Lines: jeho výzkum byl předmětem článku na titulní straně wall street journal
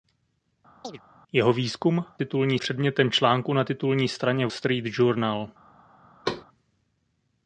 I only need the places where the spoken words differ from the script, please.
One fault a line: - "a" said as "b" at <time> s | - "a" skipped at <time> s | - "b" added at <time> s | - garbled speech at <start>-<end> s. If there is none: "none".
- "byl" said as "titulní" at 2.2 s
- "wall" skipped at 4.5 s